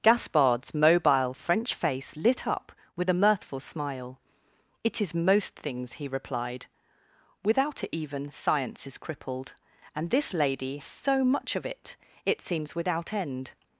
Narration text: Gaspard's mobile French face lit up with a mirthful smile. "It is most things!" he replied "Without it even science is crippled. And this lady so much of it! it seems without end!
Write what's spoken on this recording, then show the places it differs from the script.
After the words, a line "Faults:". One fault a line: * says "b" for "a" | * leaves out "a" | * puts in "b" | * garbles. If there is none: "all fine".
Gaspard's mobile French face lit up with a mirthful smile. "It is most things!" he replied "Without it even science is crippled. And this lady so much of it! it seems without end!
Faults:
all fine